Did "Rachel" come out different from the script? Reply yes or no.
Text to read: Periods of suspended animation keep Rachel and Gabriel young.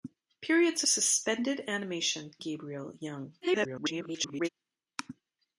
yes